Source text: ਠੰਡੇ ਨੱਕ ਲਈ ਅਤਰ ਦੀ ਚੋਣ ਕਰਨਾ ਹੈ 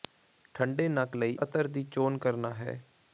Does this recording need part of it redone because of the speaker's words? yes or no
no